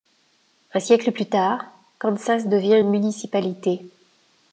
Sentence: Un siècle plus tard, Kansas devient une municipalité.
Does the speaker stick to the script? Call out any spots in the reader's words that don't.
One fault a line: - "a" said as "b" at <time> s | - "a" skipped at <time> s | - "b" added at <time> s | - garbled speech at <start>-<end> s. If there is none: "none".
none